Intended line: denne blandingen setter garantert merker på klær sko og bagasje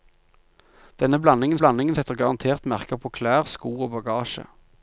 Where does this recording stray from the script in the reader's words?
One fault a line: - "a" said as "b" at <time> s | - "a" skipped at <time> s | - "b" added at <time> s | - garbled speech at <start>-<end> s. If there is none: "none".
- "blandingen" added at 1.6 s